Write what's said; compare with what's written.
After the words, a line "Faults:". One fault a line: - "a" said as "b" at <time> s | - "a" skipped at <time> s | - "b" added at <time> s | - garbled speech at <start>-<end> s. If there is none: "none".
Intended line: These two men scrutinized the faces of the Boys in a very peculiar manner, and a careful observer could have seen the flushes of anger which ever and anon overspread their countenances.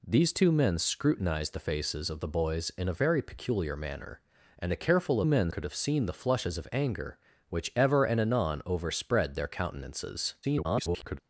These two men scrutinized the faces of the Boys in a very peculiar manner, and a careful men could have seen the flushes of anger which ever and anon overspread their countenances. [garbled]
Faults:
- "observer" said as "men" at 5.2 s
- garbled speech at 10.4-11.2 s